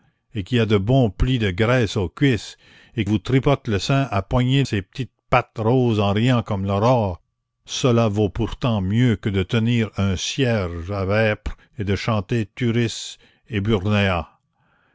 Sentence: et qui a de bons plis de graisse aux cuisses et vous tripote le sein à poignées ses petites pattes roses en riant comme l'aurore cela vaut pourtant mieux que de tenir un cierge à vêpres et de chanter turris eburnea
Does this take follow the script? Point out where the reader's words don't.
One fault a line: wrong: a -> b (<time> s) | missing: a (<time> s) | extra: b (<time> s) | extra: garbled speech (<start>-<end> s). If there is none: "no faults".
no faults